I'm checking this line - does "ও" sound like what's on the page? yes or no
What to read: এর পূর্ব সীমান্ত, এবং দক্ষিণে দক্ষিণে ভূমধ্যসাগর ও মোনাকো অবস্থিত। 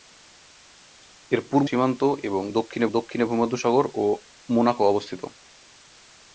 yes